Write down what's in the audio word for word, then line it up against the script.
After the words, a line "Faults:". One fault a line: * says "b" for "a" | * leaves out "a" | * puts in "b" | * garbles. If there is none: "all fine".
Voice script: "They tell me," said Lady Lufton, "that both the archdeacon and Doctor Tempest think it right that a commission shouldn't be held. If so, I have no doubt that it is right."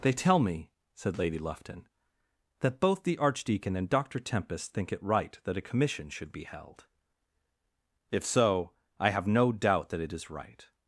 "They tell me," said Lady Lufton, "that both the archdeacon and Doctor Tempest think it right that a commission should be held. If so, I have no doubt that it is right."
Faults:
* says "should" for "shouldn't"